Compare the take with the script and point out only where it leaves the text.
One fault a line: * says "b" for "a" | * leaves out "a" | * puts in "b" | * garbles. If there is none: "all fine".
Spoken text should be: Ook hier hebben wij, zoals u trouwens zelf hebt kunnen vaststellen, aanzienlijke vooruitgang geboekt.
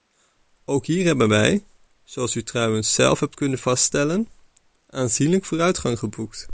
all fine